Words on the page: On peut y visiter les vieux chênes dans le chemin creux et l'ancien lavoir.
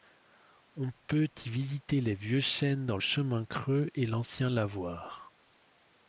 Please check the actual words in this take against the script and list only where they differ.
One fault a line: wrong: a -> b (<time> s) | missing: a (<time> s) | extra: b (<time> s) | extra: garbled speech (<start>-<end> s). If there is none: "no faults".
missing: le (3.0 s)